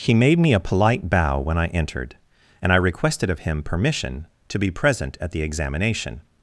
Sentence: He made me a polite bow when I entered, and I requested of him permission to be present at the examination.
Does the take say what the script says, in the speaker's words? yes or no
yes